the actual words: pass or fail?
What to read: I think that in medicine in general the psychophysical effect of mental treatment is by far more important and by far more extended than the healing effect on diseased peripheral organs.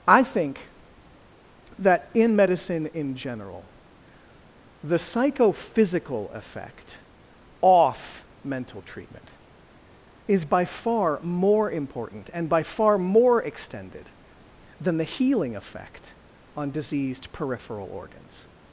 fail